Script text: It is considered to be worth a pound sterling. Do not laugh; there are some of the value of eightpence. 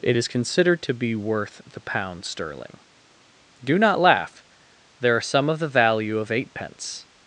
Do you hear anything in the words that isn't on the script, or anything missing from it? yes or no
yes